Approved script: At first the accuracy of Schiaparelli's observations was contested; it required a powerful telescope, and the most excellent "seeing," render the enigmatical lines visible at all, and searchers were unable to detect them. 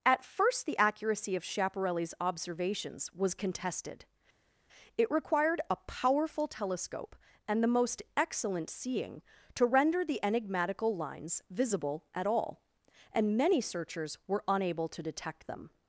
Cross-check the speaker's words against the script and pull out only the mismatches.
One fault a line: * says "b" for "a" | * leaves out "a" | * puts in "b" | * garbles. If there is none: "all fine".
* puts in "to"
* puts in "many"